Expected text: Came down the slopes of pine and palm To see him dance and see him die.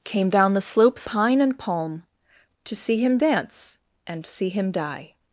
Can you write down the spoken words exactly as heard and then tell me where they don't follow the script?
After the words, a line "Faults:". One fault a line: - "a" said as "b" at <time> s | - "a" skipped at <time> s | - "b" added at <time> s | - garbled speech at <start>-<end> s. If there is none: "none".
Came down the slopes pine and palm To see him dance and see him die.
Faults:
- "of" skipped at 1.1 s